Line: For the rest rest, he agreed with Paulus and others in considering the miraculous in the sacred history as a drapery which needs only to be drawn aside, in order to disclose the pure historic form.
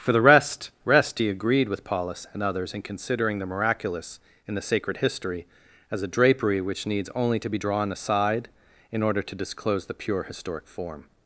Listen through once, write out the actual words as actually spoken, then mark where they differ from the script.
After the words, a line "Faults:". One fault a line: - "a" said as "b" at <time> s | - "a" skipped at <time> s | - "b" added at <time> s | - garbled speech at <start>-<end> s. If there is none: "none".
For the rest rest, he agreed with Paulus and others in considering the miraculous in the sacred history as a drapery which needs only to be drawn aside, in order to disclose the pure historic form.
Faults:
none